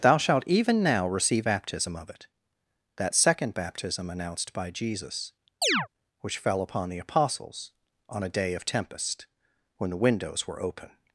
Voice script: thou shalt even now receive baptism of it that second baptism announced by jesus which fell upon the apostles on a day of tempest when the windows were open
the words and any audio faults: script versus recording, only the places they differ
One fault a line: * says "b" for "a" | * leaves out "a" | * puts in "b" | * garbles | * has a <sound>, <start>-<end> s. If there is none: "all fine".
* has a chirp, 5.6-5.9 s